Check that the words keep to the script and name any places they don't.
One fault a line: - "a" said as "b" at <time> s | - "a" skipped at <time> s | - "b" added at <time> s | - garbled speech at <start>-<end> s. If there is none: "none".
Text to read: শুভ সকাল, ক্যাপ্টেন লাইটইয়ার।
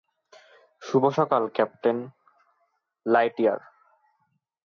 none